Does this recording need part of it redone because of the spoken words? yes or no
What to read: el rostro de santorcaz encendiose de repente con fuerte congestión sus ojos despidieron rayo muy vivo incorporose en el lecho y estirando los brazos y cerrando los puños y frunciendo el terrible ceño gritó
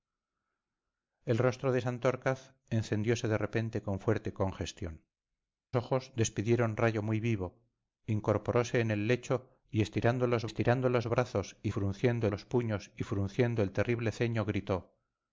yes